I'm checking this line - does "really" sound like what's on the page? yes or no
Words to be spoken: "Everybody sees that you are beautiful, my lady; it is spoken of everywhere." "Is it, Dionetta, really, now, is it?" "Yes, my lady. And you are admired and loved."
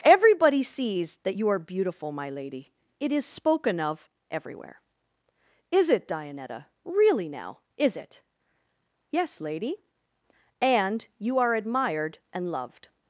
yes